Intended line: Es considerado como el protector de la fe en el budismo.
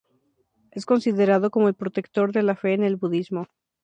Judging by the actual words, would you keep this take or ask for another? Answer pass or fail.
pass